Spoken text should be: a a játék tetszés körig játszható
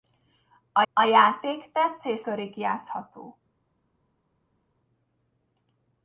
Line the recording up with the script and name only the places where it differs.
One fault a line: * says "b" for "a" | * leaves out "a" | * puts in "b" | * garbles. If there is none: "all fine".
all fine